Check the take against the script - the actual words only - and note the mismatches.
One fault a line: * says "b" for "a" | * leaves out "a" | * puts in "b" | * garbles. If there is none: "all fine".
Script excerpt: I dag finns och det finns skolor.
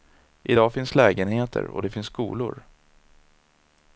* puts in "lägenheter"